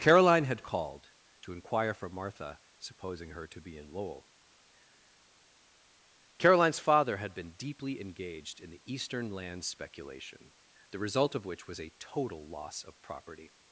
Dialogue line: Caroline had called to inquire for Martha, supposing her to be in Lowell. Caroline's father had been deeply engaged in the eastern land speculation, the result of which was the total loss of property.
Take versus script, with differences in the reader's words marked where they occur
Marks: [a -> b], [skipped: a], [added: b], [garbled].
Caroline had called to inquire for Martha, supposing her to be in Lowell. Caroline's father had been deeply engaged in the eastern land speculation, the result of which was [the -> a] total loss of property.